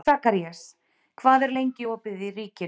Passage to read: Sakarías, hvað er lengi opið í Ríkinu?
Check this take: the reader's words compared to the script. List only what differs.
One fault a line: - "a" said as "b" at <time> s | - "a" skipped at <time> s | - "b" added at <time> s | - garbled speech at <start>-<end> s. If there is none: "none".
none